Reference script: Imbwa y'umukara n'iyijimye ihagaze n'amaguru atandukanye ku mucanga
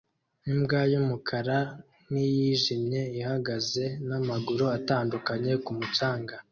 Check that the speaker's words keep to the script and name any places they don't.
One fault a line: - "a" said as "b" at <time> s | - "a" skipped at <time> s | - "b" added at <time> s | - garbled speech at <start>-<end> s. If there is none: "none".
none